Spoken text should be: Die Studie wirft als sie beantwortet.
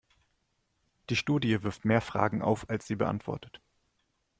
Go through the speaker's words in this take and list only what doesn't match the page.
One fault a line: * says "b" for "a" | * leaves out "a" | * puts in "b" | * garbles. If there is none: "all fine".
* puts in "mehr Fragen auf"